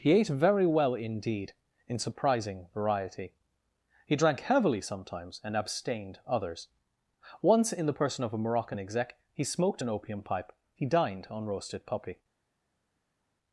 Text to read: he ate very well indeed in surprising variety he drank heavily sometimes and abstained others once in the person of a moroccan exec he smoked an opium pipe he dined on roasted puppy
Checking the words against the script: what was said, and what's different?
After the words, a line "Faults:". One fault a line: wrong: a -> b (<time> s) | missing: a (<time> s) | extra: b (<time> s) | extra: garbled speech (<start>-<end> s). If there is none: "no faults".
he ate very well indeed in surprising variety he drank heavily sometimes and abstained others once in the person of a moroccan exec he smoked an opium pipe he dined on roasted puppy
Faults:
no faults